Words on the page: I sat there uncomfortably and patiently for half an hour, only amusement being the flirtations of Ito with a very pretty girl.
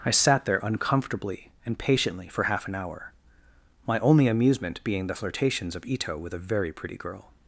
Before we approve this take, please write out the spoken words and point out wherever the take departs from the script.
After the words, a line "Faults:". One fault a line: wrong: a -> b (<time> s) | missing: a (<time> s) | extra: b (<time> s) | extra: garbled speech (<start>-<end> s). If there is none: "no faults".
I sat there uncomfortably and patiently for half an hour, my only amusement being the flirtations of Ito with a very pretty girl.
Faults:
extra: my (3.9 s)